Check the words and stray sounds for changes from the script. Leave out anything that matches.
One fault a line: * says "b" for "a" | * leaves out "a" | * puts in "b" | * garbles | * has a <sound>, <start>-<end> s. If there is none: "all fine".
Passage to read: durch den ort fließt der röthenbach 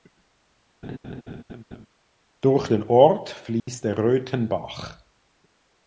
* has a laugh, 0.8-1.9 s
* has a dropout, 3.6-3.7 s